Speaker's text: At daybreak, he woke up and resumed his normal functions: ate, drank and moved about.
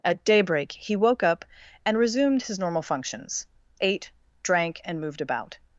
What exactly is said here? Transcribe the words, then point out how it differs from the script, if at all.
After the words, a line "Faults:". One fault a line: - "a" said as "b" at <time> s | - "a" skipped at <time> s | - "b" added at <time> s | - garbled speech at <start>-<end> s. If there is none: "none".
At daybreak, he woke up and resumed his normal functions: ate, drank and moved about.
Faults:
none